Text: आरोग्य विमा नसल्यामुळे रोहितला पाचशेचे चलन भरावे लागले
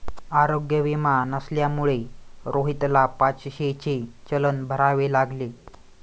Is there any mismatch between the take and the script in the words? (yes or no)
no